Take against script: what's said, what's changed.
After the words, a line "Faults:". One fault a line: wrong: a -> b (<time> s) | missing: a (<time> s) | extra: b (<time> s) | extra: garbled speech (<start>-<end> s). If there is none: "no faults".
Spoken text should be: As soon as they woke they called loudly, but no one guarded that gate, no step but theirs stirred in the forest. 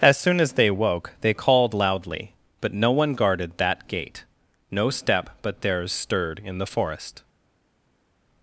As soon as they woke they called loudly, but no one guarded that gate, no step but theirs stirred in the forest.
Faults:
no faults